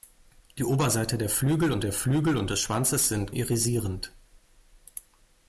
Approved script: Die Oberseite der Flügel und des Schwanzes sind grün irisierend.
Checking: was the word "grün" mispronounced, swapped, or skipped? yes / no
yes